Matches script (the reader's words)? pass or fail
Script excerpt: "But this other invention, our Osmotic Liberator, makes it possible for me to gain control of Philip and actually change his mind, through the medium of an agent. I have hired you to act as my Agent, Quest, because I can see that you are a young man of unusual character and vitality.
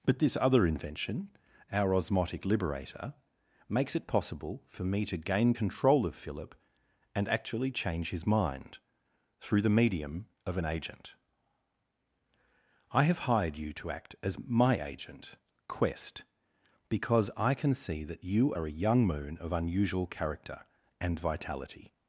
fail